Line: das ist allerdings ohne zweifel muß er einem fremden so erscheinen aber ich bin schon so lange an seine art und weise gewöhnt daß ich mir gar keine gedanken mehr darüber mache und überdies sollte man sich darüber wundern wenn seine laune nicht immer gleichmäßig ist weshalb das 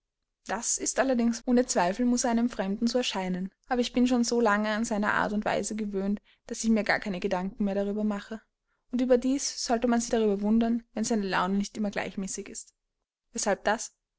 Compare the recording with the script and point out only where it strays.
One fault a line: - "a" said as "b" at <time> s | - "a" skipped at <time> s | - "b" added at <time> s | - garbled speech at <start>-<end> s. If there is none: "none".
none